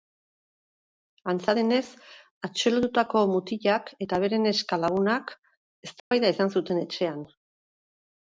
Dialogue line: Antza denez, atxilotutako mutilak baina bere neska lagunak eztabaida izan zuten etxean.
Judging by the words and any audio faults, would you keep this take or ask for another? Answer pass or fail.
fail